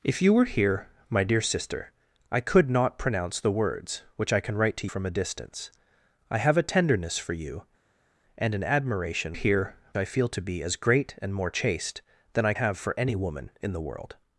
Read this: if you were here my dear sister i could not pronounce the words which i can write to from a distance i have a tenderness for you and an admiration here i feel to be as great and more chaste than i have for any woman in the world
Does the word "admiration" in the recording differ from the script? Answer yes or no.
no